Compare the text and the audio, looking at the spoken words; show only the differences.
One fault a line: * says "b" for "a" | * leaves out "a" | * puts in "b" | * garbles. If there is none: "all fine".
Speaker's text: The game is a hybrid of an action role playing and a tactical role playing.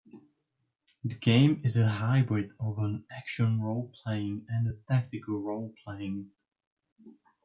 all fine